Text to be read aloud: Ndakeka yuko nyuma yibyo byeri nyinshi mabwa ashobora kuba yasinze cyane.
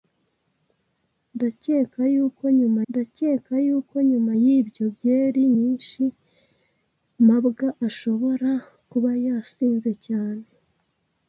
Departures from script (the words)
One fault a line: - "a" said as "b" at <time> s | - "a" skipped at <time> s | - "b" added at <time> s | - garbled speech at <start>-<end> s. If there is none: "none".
- "ndakeka yuko nyuma" added at 2.9 s